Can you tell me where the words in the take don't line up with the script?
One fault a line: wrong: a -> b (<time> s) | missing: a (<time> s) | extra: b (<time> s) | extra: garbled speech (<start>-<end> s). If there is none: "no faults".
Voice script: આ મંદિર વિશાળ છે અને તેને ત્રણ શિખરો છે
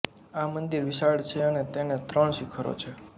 no faults